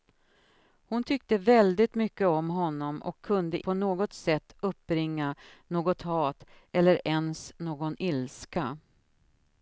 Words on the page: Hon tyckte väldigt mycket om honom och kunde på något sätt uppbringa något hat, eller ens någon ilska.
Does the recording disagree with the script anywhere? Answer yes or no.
no